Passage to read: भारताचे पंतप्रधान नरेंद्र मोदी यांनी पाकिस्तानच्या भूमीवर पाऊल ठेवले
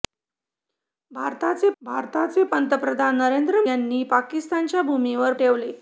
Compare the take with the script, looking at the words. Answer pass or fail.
fail